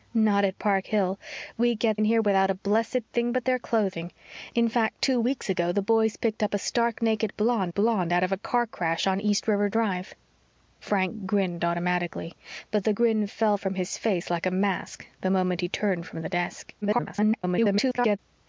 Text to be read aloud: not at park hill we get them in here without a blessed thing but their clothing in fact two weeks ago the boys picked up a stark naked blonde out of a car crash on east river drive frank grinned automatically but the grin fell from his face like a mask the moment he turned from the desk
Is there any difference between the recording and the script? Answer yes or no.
yes